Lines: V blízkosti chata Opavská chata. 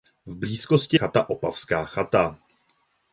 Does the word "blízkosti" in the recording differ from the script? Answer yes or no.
no